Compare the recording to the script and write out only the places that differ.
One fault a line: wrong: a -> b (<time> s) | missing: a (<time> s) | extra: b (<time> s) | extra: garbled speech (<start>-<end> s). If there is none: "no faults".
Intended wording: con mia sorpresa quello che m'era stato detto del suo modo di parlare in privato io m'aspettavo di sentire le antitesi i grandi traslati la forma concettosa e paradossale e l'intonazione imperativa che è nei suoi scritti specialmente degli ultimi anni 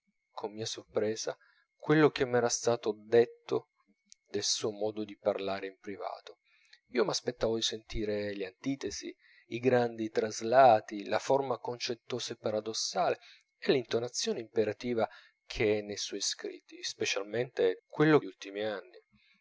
wrong: degli -> quello (17.9 s)